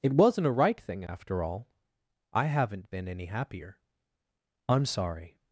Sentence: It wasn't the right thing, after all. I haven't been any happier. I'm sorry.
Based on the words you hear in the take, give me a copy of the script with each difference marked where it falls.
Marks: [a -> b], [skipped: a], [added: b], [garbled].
It wasn't [the -> a] right thing, after all. I haven't been any happier. I'm sorry.